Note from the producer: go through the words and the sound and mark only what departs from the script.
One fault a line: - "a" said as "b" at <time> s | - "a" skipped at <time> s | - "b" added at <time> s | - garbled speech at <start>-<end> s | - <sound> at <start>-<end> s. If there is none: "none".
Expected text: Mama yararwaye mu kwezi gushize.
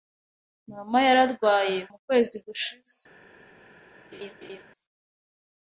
- laugh at 4.1-4.6 s